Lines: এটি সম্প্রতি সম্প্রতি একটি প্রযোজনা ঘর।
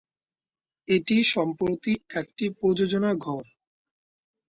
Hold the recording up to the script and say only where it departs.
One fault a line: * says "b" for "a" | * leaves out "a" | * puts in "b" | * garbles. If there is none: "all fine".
* leaves out "সম্প্রতি"